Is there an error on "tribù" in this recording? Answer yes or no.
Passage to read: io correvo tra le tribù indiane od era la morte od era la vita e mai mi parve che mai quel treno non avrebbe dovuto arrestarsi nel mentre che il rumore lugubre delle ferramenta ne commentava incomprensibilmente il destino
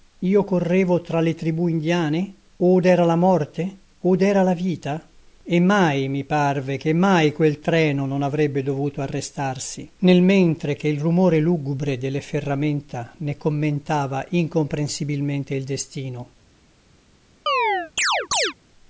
no